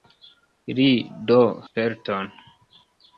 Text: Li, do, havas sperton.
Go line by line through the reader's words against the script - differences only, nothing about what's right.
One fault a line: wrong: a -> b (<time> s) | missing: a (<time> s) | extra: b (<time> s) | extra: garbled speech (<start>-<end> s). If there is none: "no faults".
missing: havas (1.4 s)